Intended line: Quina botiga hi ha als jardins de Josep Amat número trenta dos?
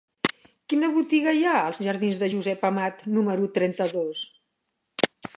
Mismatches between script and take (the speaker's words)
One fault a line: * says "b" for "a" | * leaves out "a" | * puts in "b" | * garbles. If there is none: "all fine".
all fine